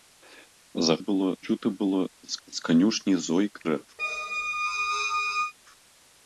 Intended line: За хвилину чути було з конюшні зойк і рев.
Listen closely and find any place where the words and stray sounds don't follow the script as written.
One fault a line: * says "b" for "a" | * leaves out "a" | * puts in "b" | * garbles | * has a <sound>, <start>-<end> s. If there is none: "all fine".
* says "було" for "хвилину"
* puts in "з"
* leaves out "і"
* has a squeak, 4.0-5.5 s